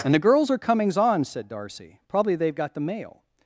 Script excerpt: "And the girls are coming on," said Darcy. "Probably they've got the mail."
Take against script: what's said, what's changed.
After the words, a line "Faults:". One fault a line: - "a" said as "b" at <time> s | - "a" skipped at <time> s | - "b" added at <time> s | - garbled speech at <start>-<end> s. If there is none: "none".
"And the girls are comings on," said Darcy. "Probably they've got the mail."
Faults:
- "coming" said as "comings" at 0.6 s